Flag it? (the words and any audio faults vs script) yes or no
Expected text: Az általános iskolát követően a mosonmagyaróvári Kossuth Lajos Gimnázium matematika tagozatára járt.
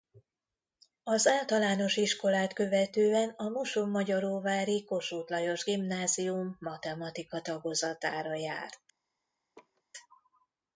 yes